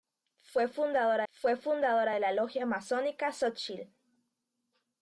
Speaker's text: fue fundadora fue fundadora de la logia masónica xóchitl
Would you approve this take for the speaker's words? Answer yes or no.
yes